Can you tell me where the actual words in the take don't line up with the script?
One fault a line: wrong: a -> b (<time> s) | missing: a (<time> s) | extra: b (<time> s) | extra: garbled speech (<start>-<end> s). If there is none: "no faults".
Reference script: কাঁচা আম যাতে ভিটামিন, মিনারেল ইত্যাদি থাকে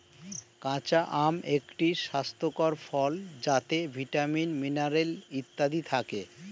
extra: একটি স্বাস্থ্যকর ফল (1.6 s)